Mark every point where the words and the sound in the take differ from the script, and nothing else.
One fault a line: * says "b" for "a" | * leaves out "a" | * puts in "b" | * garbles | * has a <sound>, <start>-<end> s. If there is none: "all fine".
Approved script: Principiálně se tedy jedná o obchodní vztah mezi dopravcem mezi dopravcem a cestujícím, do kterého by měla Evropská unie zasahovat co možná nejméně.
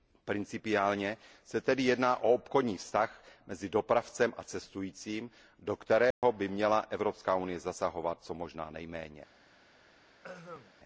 * leaves out "mezi dopravcem"
* has a dropout, 6.1-6.2 s
* has a throat clearing, 10.2-10.7 s